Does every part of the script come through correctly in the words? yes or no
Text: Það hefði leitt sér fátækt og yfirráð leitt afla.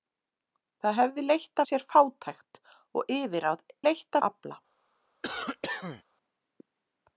yes